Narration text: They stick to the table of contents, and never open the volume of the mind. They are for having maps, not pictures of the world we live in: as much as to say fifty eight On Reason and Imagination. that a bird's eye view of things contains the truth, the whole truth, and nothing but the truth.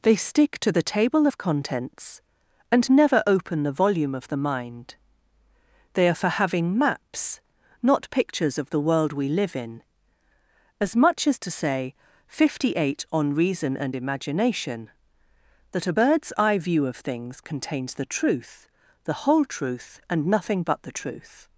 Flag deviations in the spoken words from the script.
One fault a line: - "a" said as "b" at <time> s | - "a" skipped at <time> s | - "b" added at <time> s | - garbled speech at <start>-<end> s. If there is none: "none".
none